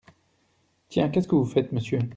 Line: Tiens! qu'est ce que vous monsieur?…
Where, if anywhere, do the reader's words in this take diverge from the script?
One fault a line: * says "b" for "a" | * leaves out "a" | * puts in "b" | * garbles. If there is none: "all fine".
* puts in "faites"